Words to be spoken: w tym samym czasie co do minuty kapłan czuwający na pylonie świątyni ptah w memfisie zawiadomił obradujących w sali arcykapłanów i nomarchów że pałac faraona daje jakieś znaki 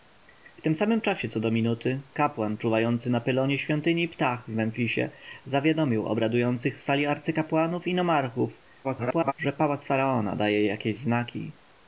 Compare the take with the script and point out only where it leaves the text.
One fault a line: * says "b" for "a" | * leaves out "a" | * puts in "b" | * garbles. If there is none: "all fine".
* garbles